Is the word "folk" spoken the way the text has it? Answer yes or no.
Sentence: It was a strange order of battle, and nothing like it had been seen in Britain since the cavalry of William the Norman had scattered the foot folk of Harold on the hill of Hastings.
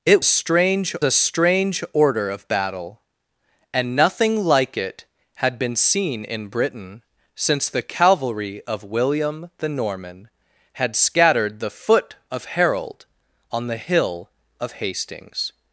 no